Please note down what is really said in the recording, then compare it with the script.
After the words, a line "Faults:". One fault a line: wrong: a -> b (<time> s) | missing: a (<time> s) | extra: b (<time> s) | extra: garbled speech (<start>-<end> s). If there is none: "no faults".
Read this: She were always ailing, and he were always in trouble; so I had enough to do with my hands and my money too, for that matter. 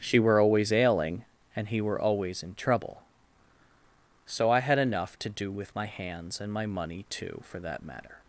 She were always ailing, and he were always in trouble; so I had enough to do with my hands and my money too, for that matter.
Faults:
no faults